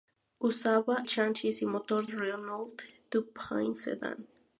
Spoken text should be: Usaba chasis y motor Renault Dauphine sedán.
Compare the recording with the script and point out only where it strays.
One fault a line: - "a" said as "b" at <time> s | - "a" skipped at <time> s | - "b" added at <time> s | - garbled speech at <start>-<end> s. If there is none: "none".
none